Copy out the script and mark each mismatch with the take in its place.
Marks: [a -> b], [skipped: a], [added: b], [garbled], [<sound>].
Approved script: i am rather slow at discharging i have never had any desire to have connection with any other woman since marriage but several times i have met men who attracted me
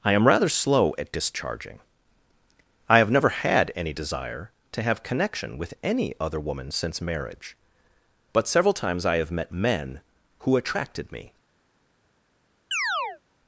i am rather slow at discharging i have never had any desire to have connection with any other woman since marriage but several times i have met men who attracted me [chirp]